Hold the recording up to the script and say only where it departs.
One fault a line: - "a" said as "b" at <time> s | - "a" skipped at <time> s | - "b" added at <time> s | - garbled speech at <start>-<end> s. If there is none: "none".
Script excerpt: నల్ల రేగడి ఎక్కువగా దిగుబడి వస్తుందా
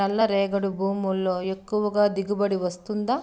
- "భూముల్లో" added at 0.7 s